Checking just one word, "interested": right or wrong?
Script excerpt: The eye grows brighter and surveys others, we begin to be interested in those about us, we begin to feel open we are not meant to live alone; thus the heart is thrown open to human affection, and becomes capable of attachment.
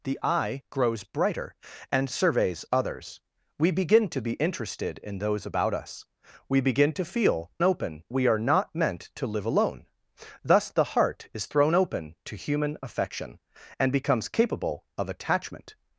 right